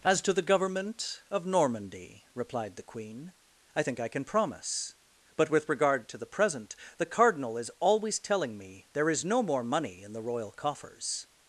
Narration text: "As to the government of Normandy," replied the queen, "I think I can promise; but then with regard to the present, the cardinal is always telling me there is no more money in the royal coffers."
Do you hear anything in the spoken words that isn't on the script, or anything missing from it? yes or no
yes